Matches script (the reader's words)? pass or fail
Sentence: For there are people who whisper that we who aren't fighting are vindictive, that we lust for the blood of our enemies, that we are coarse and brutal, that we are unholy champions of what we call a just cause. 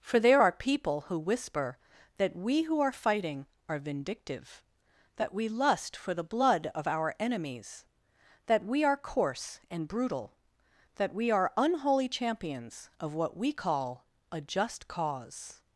fail